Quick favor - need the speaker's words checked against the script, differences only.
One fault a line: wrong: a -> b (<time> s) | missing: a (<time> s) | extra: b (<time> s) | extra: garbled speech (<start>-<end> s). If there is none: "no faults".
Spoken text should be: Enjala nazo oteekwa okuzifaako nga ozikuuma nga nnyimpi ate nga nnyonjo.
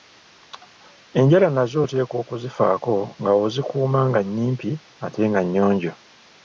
no faults